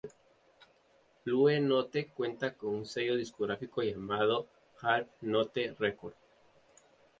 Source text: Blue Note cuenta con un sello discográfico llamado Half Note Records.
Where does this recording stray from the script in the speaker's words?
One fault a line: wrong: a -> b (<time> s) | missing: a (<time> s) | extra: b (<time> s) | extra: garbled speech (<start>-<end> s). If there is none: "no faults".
no faults